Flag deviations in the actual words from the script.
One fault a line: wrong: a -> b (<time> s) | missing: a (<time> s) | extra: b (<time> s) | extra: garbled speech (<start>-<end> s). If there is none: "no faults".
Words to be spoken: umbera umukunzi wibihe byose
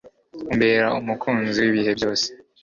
no faults